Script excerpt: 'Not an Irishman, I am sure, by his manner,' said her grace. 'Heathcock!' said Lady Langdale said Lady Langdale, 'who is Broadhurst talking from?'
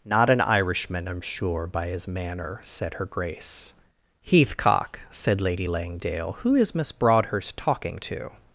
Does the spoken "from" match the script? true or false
false